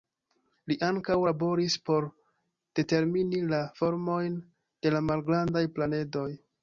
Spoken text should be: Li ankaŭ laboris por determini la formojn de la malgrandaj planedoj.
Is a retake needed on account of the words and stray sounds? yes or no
no